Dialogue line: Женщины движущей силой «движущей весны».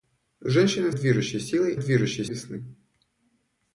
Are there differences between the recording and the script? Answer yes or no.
no